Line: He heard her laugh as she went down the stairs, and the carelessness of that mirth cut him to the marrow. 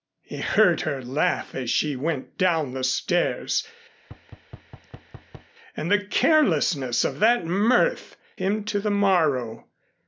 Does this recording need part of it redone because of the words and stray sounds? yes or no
yes